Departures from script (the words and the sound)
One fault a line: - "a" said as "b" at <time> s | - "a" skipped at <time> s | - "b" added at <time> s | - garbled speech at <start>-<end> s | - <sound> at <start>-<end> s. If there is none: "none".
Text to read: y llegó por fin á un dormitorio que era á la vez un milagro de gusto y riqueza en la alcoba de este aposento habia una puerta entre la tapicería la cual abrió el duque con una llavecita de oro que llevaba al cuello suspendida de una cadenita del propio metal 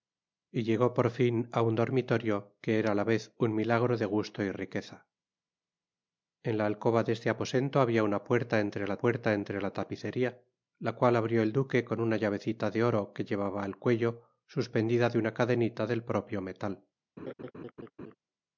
- "puerta entre la" added at 9.0 s
- laugh at 17.2-18.2 s